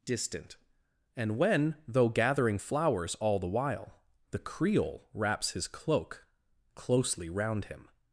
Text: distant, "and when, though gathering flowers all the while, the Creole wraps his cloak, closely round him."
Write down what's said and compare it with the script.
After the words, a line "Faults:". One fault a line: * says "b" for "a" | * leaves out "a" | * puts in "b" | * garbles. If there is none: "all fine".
distant, "and when, though gathering flowers all the while, the Creole wraps his cloak, closely round him."
Faults:
all fine